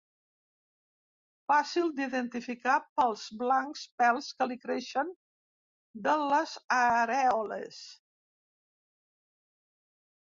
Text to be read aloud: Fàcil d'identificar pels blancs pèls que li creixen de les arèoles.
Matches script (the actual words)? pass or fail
pass